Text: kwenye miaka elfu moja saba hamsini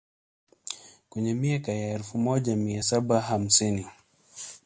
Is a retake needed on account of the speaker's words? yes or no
yes